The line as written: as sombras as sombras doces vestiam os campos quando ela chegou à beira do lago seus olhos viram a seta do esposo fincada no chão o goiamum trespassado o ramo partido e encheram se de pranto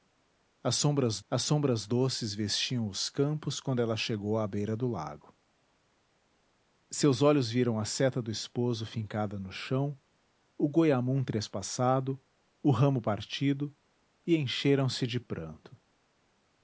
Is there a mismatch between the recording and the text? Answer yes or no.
no